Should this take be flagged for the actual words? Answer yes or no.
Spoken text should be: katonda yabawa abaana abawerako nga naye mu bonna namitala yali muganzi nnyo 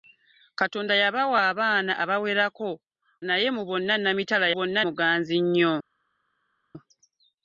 yes